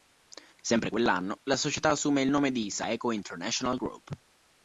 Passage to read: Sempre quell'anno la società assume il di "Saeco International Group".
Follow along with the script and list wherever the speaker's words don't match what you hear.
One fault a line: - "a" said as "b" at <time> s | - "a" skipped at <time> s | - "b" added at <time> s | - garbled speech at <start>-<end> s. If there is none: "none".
- "nome" added at 2.3 s